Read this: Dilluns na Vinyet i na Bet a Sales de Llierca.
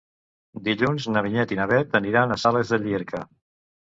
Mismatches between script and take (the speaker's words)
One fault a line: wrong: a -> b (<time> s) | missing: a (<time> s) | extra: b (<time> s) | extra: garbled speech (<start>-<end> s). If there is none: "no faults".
extra: aniran (2.0 s)